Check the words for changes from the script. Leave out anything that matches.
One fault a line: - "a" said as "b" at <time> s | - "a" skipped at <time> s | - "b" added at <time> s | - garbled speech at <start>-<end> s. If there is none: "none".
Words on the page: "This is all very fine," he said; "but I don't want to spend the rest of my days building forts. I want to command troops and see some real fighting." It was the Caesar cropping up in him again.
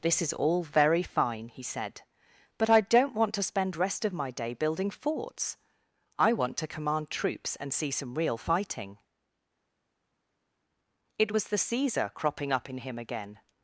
- "the" skipped at 3.8 s
- "days" said as "day" at 4.3 s